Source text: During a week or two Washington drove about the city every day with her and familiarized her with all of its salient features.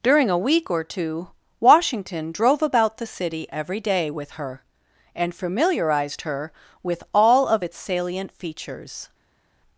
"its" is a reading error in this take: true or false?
false